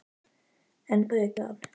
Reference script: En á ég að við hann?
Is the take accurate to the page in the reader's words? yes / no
yes